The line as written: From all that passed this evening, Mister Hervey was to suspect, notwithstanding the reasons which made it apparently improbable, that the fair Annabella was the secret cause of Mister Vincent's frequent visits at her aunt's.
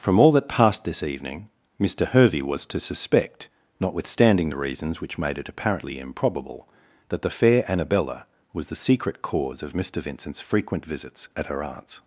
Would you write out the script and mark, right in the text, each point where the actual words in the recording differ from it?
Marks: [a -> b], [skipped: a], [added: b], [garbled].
From all that passed this evening, Mister Hervey was to suspect, notwithstanding the reasons which made it apparently improbable, that the fair Annabella was the secret cause of Mister Vincent's frequent visits at her aunt's.